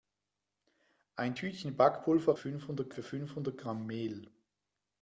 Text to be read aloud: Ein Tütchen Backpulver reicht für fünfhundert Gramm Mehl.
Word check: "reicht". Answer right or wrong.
wrong